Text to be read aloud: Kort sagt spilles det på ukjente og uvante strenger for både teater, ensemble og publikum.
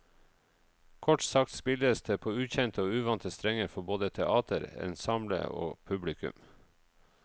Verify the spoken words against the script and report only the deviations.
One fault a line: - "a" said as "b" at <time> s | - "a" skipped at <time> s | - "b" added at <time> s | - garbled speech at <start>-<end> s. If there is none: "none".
none